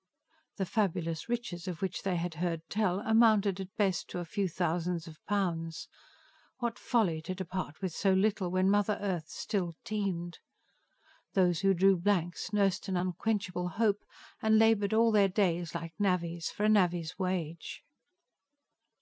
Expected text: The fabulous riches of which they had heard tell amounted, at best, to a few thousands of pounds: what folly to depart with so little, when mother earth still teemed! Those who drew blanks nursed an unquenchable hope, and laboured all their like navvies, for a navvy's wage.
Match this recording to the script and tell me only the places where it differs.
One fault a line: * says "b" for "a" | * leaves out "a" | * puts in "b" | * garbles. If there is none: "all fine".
* puts in "days"